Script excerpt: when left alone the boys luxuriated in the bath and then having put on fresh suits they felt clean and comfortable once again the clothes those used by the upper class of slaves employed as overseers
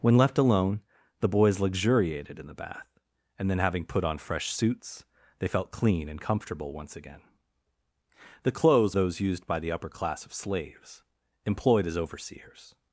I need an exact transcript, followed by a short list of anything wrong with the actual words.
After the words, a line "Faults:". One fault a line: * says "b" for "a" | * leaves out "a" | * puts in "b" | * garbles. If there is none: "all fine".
when left alone the boys luxuriated in the bath and then having put on fresh suits they felt clean and comfortable once again the clothes those used by the upper class of slaves employed as overseers
Faults:
all fine